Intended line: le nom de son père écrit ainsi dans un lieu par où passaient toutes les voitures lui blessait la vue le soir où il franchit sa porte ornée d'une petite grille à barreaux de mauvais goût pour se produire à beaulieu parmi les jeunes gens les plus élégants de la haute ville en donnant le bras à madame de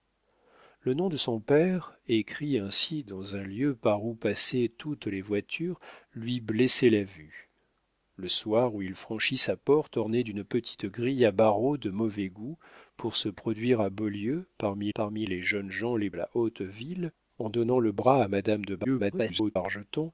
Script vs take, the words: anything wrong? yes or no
yes